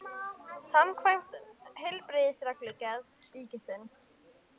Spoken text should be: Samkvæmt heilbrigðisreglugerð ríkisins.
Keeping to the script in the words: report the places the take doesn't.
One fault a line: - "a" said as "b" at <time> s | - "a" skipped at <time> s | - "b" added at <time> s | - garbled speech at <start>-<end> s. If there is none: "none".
none